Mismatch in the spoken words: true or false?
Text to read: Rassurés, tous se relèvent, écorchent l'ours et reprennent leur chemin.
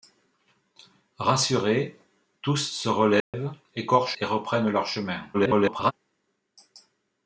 true